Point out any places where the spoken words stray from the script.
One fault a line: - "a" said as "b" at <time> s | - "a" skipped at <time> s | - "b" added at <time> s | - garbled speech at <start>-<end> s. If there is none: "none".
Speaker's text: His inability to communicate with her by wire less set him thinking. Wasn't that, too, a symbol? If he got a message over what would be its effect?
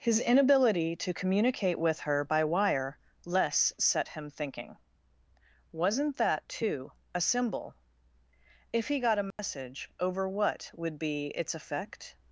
none